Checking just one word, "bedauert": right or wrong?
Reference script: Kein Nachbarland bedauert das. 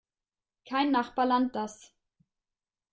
wrong